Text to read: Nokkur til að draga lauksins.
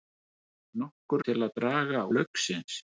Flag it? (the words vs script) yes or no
no